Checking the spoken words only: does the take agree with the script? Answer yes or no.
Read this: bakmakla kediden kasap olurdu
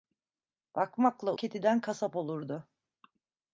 yes